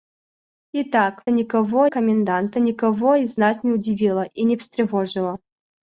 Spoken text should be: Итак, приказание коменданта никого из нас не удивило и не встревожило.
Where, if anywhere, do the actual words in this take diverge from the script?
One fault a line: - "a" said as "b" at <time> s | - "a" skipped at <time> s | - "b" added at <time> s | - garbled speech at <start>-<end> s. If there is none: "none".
- "приказание" said as "никого" at 1.3 s